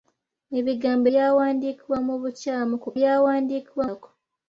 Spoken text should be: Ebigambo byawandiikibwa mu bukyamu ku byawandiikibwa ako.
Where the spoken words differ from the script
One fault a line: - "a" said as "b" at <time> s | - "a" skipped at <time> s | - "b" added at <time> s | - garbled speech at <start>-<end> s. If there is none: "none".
none